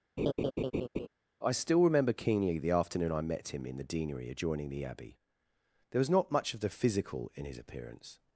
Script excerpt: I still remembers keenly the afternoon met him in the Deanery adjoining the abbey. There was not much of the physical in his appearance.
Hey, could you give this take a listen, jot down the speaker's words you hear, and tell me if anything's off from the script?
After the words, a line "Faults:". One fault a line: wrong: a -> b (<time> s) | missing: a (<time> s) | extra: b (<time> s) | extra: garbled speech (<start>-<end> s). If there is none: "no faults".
I still remember keenly the afternoon I met him in the Deanery adjoining the abbey. There was not much of the physical in his appearance.
Faults:
wrong: remembers -> remember (1.8 s)
extra: I (3.1 s)